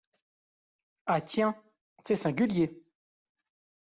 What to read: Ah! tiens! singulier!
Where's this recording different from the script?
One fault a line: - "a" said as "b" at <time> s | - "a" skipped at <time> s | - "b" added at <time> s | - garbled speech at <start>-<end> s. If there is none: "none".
- "c'est" added at 2.0 s